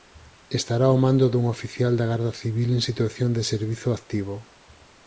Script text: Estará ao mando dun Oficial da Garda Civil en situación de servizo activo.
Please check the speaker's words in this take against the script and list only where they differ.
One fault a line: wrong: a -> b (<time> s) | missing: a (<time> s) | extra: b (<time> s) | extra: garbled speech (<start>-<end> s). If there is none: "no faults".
no faults